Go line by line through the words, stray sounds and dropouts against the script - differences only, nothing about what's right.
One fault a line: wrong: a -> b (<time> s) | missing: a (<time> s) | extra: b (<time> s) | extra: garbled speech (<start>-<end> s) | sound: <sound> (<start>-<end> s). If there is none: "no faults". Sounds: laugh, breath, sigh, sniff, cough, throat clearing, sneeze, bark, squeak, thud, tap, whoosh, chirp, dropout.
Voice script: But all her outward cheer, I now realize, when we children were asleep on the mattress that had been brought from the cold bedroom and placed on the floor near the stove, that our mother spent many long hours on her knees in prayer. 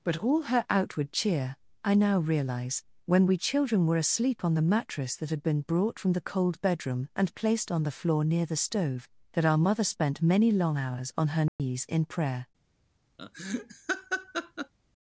sound: dropout (11.5-11.6 s)
sound: laugh (13.2-14.7 s)